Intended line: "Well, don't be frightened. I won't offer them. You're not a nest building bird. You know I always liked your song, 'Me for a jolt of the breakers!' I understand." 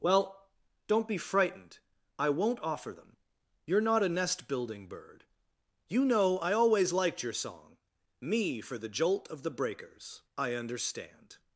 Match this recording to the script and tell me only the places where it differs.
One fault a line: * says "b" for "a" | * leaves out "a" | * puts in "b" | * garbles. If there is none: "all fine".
* says "the" for "a"